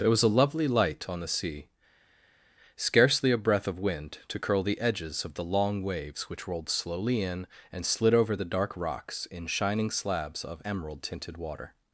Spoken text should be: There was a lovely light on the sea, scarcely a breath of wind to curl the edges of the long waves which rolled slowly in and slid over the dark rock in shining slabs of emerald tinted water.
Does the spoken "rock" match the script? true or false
false